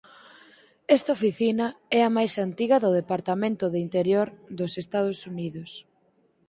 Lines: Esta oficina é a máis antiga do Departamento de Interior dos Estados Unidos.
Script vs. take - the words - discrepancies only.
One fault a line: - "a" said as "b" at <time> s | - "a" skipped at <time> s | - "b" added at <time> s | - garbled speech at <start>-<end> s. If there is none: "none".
none